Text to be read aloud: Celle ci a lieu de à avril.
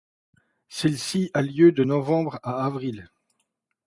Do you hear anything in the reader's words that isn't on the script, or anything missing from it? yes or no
yes